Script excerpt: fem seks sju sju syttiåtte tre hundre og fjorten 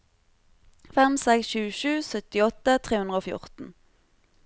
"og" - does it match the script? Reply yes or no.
yes